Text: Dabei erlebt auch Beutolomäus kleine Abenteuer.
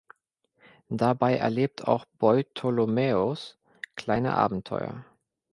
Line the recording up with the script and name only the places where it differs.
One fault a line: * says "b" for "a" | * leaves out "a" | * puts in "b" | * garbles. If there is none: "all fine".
all fine